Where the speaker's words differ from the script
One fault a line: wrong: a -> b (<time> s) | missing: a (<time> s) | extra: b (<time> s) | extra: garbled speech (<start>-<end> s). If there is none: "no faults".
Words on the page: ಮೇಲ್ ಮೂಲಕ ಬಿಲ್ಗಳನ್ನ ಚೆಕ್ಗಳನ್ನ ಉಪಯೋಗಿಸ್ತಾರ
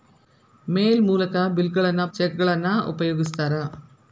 no faults